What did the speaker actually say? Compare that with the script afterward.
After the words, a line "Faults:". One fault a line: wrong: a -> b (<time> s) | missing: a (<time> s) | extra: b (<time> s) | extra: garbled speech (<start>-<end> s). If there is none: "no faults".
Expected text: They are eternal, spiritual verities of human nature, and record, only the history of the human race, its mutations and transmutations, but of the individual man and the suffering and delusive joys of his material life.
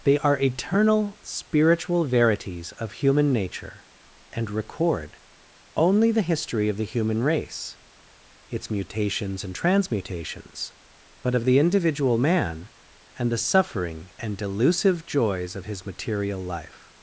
They are eternal, spiritual verities of human nature, and record, only the history of the human race, its mutations and transmutations, but of the individual man and the suffering and delusive joys of his material life.
Faults:
no faults